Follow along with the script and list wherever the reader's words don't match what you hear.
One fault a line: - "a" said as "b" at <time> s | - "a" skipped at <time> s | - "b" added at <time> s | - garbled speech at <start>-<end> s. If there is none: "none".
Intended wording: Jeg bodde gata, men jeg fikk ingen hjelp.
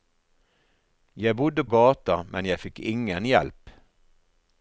none